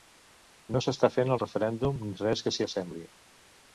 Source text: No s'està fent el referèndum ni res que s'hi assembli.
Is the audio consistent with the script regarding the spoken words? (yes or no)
yes